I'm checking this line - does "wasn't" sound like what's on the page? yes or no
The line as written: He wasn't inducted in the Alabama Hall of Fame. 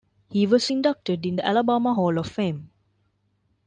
no